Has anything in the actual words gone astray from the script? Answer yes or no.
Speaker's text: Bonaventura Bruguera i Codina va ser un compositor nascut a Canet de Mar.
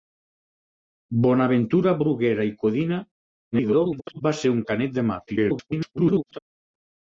yes